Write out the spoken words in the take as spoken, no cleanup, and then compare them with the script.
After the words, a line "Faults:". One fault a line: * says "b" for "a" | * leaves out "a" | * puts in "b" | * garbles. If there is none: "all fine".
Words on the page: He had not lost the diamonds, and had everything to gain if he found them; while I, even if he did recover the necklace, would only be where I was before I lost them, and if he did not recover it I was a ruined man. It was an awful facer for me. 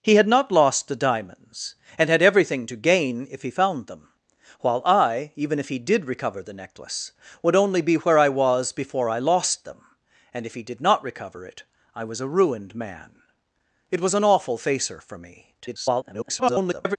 He had not lost the diamonds, and had everything to gain if he found them; while I, even if he did recover the necklace, would only be where I was before I lost them, and if he did not recover it I was a ruined man. It was an awful facer for me. [garbled]
Faults:
* garbles